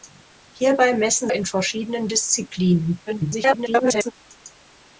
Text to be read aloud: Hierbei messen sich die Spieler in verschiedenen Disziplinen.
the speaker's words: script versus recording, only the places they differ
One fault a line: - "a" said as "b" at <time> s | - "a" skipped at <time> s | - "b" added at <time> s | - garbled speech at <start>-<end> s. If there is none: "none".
- "sich die Spieler" skipped at 1.3 s
- garbled speech at 3.1-4.1 s